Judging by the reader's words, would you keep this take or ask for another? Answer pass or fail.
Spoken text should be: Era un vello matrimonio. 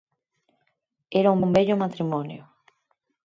fail